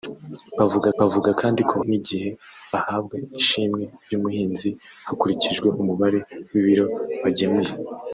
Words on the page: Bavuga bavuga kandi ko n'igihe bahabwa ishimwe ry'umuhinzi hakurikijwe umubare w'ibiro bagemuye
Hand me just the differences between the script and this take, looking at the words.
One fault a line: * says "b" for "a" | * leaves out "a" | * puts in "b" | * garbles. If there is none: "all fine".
all fine